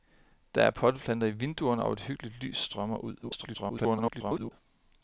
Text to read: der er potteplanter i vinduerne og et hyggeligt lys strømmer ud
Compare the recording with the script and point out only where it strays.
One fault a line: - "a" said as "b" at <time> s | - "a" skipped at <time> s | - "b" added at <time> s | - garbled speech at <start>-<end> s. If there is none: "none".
- garbled speech at 3.2-4.5 s